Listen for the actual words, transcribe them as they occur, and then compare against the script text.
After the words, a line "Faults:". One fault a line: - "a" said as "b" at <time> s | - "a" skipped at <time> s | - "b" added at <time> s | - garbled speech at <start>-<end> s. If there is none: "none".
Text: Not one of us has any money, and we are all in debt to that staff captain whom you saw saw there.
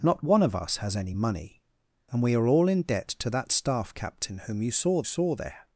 Not one of us has any money, and we are all in debt to that staff captain whom you saw saw there.
Faults:
none